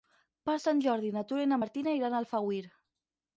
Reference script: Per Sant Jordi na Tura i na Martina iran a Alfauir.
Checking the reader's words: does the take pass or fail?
pass